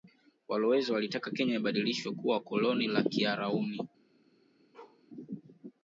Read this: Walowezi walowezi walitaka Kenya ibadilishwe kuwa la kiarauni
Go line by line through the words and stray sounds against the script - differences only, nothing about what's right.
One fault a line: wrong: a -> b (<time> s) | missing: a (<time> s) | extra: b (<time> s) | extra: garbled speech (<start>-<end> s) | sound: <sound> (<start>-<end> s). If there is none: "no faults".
missing: walowezi (0.9 s)
extra: koloni (2.4 s)
sound: bark (4.7-5.0 s)